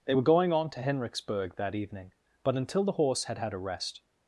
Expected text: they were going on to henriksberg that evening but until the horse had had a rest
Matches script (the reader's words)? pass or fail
pass